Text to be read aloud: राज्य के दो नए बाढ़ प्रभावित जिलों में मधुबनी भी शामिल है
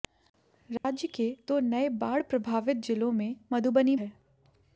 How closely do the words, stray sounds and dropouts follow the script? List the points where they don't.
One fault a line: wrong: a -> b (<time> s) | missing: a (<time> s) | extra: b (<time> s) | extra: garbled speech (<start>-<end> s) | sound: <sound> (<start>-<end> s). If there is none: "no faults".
sound: dropout (0.8-0.8 s)
missing: भी शामिल (4.0 s)